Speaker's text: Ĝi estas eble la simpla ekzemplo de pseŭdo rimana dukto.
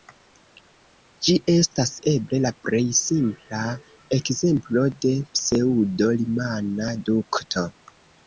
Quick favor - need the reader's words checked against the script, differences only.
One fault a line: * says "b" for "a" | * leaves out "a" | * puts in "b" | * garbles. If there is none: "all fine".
* puts in "plej"